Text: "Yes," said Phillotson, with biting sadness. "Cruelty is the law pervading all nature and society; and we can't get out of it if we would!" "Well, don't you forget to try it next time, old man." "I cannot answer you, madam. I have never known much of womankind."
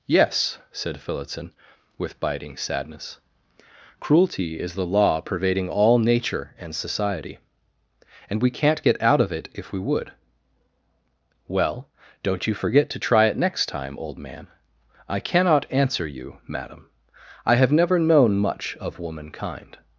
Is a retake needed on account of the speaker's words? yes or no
no